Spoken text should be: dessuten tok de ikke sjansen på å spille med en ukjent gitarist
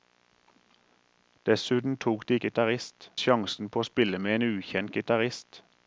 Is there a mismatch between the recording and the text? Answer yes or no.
yes